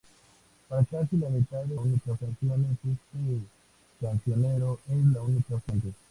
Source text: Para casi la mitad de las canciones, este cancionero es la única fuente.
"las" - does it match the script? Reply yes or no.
no